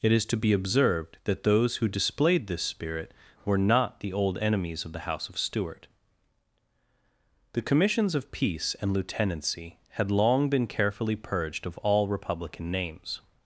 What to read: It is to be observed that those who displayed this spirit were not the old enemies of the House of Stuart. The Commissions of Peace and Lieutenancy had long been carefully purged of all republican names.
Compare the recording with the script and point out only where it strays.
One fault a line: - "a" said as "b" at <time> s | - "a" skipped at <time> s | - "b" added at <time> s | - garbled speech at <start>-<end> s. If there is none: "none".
none